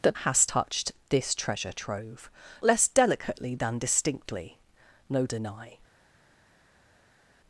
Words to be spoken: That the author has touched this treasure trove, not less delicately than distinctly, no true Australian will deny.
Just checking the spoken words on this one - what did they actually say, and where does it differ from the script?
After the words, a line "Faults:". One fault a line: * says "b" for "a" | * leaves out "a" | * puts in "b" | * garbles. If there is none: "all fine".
That has touched this treasure trove, less delicately than distinctly, no deny.
Faults:
* leaves out "the author"
* leaves out "not"
* leaves out "true Australian will"